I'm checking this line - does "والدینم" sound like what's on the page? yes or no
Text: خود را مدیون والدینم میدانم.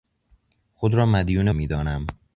no